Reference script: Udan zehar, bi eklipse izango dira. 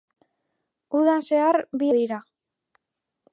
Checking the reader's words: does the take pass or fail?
fail